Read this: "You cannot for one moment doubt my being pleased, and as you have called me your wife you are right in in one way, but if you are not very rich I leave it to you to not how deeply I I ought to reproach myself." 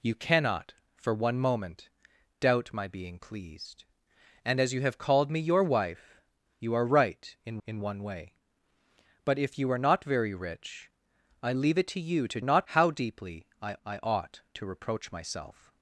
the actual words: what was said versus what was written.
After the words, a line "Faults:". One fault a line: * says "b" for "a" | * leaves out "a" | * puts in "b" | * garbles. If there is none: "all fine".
"You cannot for one moment doubt my being pleased, and as you have called me your wife you are right in in one way, but if you are not very rich I leave it to you to not how deeply I I ought to reproach myself."
Faults:
all fine